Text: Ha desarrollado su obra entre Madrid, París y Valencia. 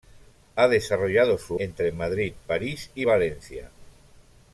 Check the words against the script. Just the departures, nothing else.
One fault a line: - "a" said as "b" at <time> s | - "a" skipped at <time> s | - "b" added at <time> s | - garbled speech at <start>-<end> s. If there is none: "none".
- "obra" skipped at 1.6 s